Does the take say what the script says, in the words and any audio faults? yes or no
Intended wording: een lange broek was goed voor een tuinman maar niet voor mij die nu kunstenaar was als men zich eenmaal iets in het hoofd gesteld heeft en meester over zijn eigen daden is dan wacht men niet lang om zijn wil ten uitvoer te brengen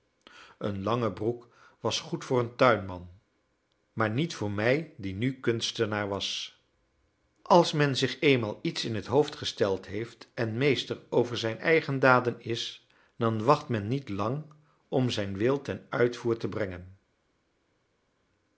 yes